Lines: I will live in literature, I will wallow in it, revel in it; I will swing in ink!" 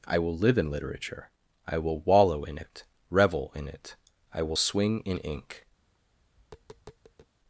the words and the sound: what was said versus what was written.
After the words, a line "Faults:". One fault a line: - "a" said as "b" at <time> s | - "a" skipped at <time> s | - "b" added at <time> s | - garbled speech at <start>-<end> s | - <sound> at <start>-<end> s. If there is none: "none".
I will live in literature, I will wallow in it, revel in it; I will swing in ink!"
Faults:
- tap at 5.8-7.3 s